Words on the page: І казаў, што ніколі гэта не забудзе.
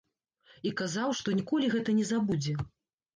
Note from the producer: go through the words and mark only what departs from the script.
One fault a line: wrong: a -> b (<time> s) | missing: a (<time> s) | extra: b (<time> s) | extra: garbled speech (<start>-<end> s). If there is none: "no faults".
no faults